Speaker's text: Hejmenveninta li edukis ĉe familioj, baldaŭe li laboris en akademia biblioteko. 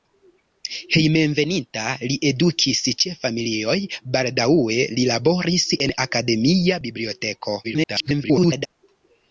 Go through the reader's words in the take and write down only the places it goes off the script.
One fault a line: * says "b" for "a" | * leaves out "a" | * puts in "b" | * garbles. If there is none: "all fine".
* garbles